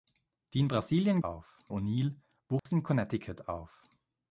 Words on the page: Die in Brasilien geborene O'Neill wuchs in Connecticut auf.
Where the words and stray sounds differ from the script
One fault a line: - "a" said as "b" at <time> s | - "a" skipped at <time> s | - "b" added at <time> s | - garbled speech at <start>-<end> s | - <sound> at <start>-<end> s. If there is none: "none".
- "geborene" said as "auf" at 1.2 s
- dropout at 2.6-2.7 s